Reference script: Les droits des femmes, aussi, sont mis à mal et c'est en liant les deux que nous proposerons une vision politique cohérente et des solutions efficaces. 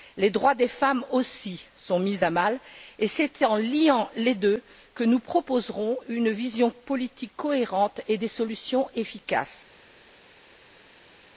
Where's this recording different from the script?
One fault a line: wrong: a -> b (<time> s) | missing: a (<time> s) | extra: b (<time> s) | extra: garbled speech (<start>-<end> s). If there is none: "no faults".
no faults